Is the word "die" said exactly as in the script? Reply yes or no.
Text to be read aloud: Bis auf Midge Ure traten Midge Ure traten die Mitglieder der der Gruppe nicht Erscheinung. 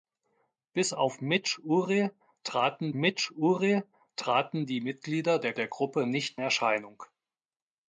yes